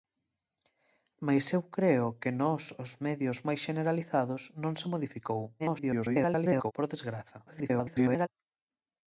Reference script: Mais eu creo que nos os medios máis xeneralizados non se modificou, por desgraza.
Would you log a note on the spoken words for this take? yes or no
yes